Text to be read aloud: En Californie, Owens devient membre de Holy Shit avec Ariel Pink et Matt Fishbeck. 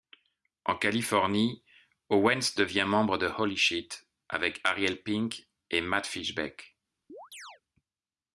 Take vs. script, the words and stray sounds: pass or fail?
fail